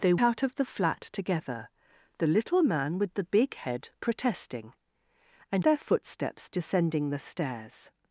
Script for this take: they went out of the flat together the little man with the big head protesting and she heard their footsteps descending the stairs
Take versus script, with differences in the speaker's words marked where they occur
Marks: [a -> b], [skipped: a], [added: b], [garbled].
they [skipped: went] out of the flat together the little man with the big head protesting and [skipped: she heard] their footsteps descending the stairs